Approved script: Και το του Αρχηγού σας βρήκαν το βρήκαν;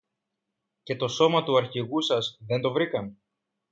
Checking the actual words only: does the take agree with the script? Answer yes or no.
no